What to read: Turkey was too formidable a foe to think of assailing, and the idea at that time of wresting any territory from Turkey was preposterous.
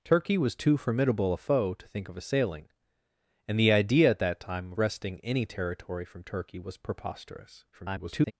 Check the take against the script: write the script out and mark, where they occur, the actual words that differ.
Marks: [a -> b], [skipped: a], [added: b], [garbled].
Turkey was too formidable a foe to think of assailing, and the idea at that time [skipped: of] wresting any territory from Turkey was preposterous. [garbled]